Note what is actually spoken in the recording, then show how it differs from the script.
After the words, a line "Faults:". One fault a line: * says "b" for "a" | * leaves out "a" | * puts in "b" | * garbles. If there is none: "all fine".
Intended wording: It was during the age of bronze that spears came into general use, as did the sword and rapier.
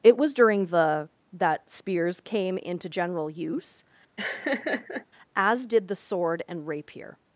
It was during the that spears came into general use, as did the sword and rapier.
Faults:
* leaves out "age of bronze"